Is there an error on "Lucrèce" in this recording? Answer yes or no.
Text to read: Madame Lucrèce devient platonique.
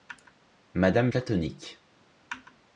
yes